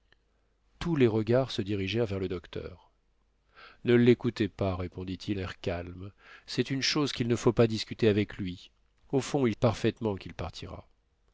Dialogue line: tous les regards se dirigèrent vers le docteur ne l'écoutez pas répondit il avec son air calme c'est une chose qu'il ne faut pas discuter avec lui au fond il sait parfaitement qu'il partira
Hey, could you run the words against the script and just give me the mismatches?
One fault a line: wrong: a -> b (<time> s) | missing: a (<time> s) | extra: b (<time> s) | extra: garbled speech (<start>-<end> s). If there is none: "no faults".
missing: avec son (5.4 s)
missing: sait (9.5 s)